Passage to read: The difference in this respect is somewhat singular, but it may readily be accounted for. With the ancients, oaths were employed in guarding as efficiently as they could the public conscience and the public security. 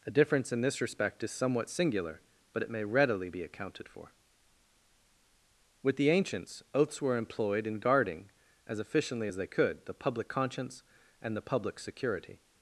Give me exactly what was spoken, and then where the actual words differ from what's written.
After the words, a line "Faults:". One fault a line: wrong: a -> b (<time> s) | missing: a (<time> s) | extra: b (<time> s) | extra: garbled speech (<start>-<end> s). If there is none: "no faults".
The difference in this respect is somewhat singular, but it may readily be accounted for. With the ancients, oaths were employed in guarding as efficiently as they could the public conscience and the public security.
Faults:
no faults